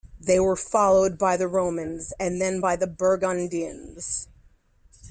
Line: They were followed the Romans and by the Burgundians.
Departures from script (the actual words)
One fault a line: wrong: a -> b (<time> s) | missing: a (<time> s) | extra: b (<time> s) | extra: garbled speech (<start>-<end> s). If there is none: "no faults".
extra: by (1.2 s)
extra: then (2.4 s)